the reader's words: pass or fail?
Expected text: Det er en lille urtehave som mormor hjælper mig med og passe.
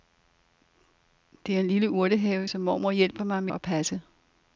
pass